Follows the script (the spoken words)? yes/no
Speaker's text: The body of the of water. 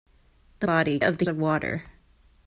yes